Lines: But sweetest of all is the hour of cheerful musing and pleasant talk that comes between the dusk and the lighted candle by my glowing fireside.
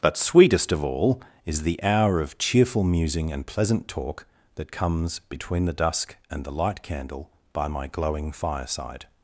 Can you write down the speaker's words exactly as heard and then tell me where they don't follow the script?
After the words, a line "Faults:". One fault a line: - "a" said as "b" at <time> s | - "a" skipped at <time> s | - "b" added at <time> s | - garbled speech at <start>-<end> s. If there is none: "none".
But sweetest of all is the hour of cheerful musing and pleasant talk that comes between the dusk and the light candle by my glowing fireside.
Faults:
- "lighted" said as "light" at 6.5 s